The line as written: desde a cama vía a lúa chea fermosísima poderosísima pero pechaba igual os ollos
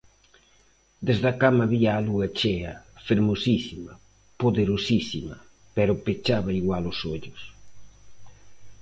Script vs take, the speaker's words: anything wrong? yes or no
no